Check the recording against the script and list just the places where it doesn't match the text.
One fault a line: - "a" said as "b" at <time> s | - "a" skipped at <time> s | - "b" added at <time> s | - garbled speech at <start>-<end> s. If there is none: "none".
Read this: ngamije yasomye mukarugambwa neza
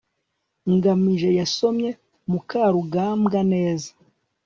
none